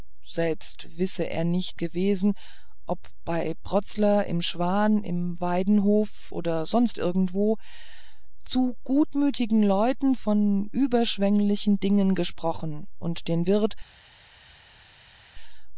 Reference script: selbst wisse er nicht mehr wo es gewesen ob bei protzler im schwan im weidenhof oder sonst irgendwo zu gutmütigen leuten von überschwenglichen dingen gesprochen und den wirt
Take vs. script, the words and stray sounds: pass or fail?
fail